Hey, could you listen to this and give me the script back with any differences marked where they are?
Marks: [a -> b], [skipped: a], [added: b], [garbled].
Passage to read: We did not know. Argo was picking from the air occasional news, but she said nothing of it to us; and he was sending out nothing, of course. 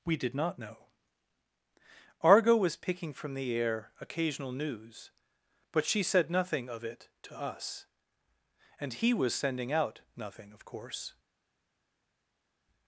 We did not know. Argo was picking from the air occasional news, but she said nothing of it to us; and he was sending out nothing, of course.